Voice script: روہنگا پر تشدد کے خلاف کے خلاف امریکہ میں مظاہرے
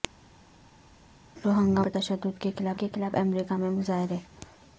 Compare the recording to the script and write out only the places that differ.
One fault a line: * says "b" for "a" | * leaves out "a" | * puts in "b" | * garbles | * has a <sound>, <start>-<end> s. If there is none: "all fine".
all fine